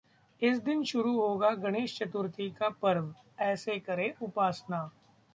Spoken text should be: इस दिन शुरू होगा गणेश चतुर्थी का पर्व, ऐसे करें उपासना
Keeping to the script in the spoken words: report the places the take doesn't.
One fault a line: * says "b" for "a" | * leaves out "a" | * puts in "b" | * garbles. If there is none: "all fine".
all fine